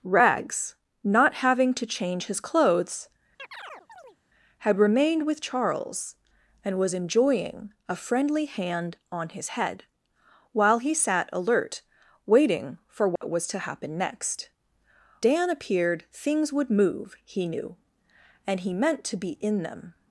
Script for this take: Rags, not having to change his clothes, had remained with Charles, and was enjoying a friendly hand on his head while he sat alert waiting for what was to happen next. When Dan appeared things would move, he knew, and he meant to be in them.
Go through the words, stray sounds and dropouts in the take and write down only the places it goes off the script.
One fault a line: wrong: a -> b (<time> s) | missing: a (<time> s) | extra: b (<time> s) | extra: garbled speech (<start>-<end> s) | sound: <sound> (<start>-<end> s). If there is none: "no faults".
sound: chirp (3.4-4.2 s)
sound: dropout (13.2-13.2 s)
missing: When (14.5 s)